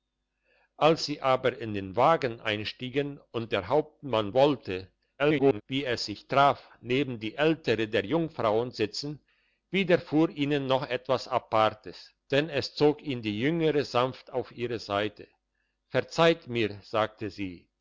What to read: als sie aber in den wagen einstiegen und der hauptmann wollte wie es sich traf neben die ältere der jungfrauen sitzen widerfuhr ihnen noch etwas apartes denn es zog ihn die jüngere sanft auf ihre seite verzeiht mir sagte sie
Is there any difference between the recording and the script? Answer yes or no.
yes